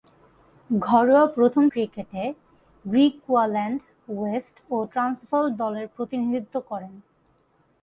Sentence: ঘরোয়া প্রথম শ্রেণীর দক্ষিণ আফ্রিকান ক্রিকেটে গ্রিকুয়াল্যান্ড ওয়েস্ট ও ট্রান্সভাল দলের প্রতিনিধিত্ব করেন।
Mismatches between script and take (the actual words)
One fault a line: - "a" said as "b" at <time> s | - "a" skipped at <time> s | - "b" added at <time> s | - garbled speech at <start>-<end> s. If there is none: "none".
- "শ্রেণীর দক্ষিণ আফ্রিকান" skipped at 1.6 s